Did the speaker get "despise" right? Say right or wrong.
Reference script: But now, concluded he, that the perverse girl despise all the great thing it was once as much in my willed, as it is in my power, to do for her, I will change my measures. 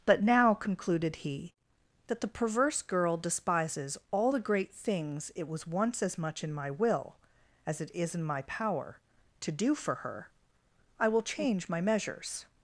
wrong